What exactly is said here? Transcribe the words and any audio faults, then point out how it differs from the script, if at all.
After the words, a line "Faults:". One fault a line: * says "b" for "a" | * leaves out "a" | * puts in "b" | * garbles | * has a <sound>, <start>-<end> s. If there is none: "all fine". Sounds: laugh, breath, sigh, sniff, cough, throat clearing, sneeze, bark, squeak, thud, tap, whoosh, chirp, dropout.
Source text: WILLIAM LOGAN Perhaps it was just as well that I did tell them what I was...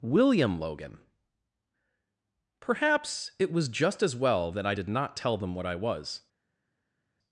WILLIAM LOGAN Perhaps it was just as well that I did not tell them what I was...
Faults:
* puts in "not"